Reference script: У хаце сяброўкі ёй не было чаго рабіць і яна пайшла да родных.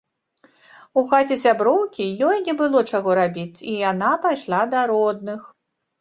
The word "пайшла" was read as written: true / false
true